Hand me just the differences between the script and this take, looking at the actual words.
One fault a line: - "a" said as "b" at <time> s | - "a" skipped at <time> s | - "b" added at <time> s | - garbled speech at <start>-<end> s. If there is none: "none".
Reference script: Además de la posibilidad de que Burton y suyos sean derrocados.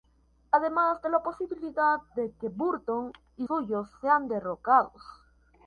none